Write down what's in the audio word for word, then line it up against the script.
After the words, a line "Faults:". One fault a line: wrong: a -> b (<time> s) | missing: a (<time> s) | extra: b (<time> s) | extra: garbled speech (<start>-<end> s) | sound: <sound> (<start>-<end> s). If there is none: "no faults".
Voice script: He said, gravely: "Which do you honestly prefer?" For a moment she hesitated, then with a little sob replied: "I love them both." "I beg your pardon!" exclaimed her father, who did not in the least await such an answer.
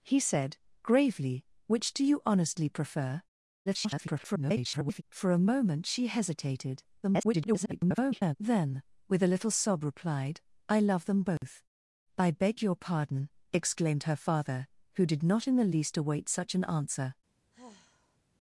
He said, gravely: "Which do you honestly prefer?" [garbled] For a moment she hesitated, [garbled] then with a little sob replied: "I love them both." "I beg your pardon!" exclaimed her father, who did not in the least await such an answer.
Faults:
extra: garbled speech (3.7-5.0 s)
extra: garbled speech (7.0-8.4 s)
sound: dropout (11.4-11.4 s)
sound: sigh (17.5-18.2 s)